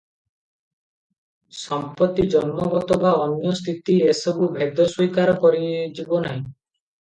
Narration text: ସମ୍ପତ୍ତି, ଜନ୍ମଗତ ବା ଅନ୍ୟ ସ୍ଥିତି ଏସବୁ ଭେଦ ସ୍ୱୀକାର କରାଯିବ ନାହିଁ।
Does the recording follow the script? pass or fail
pass